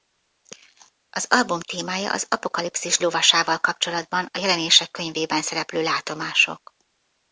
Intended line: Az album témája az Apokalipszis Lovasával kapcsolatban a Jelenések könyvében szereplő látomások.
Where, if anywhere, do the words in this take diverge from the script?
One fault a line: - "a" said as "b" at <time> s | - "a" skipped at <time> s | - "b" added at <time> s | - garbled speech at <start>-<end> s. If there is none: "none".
none